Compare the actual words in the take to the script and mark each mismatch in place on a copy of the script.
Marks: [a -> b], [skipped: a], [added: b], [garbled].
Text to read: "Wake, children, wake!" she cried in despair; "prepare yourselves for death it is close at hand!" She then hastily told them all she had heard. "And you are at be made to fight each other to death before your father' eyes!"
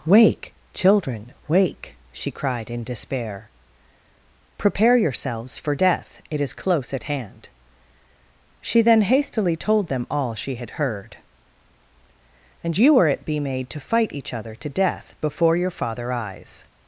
"Wake, children, wake!" she cried in despair; "prepare yourselves for death it is close at hand!" She then hastily told them all she had heard. "And you are at be made to fight each other to death before your father' eyes!"